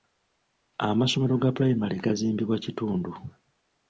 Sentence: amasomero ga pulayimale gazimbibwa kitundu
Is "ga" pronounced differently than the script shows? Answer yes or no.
no